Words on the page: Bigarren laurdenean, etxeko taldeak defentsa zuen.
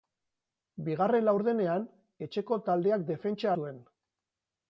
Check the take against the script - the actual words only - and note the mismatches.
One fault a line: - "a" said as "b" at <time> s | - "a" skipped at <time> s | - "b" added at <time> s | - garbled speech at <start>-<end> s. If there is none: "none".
none